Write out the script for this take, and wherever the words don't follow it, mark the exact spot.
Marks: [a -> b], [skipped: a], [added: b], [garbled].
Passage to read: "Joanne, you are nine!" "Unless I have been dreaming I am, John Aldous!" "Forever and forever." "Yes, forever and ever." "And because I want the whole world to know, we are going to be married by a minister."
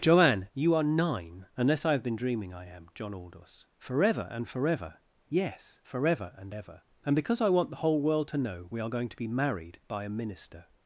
"Joanne, you are nine!" "Unless I have been dreaming I am, John Aldous!" "Forever and forever." "Yes, forever and ever." "And because I want the whole world to know, we are going to be married by a minister."